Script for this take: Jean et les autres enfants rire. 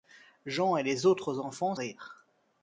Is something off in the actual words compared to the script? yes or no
no